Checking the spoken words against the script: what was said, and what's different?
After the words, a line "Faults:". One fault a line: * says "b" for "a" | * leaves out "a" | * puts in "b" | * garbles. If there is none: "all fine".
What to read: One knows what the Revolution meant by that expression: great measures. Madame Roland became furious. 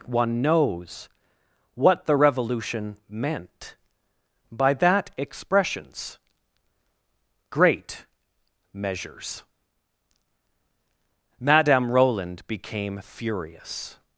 One knows what the Revolution meant by that expressions: great measures. Madame Roland became furious.
Faults:
* says "expressions" for "expression"